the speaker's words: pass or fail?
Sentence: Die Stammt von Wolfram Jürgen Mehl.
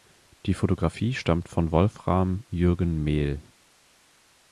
fail